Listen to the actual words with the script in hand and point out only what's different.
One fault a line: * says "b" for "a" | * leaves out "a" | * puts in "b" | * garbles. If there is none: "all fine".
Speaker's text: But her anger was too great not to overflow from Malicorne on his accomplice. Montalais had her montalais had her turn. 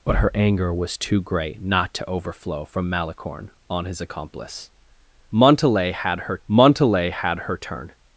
all fine